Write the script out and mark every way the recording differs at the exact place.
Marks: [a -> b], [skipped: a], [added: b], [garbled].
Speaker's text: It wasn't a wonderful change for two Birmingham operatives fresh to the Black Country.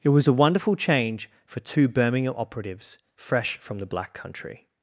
It [wasn't -> was] a wonderful change for two Birmingham operatives fresh [to -> from] the Black Country.